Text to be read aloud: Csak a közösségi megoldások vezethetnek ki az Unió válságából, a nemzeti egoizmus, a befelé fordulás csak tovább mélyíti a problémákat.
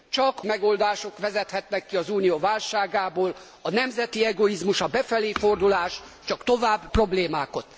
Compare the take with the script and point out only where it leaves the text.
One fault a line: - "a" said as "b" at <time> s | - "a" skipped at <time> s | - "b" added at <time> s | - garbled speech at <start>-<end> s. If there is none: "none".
- "a közösségi" skipped at 0.4 s
- "mélyíti a" skipped at 6.9 s